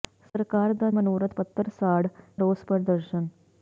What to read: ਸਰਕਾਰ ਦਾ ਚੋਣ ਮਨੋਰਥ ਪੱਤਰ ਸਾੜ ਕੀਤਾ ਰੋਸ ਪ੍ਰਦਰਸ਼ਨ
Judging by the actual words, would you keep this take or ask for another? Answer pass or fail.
fail